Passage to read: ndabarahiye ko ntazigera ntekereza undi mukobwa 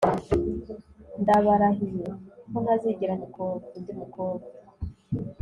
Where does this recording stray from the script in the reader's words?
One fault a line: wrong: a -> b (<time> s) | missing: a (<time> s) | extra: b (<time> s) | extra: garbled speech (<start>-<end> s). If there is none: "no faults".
wrong: ntekereza -> mukobwa (3.2 s)